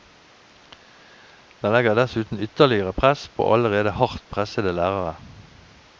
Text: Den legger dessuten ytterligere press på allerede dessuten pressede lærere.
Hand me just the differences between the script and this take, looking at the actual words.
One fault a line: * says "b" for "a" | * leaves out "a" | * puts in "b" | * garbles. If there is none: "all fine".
* says "hardt" for "dessuten"